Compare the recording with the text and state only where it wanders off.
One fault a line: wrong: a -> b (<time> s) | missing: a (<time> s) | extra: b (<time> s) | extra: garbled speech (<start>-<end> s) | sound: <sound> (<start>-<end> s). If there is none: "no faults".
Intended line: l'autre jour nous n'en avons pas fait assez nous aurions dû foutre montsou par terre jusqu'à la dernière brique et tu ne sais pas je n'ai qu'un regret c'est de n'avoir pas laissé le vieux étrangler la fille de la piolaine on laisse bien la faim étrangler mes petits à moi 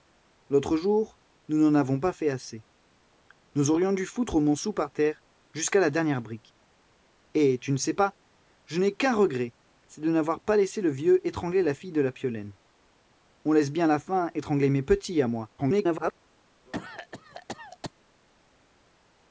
extra: garbled speech (15.6-16.1 s)
sound: cough (16.7-17.9 s)